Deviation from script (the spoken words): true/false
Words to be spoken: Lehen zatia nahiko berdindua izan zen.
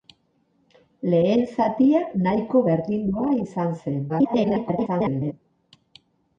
true